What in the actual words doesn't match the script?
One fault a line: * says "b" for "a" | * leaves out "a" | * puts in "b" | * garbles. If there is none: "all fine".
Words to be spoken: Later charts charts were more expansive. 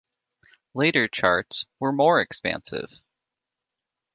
* leaves out "charts"